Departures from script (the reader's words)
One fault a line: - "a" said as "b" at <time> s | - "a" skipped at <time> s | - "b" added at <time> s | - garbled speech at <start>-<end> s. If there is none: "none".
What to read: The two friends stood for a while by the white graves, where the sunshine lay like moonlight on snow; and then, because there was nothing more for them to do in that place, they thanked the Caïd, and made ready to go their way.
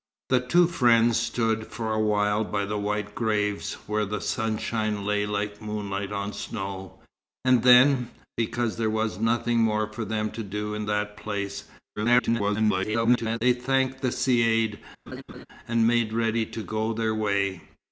- garbled speech at 12.0-13.4 s